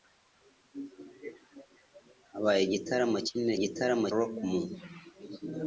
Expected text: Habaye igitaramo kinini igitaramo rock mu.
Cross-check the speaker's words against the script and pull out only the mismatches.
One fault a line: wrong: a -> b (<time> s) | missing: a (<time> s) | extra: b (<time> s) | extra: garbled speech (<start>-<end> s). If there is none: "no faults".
no faults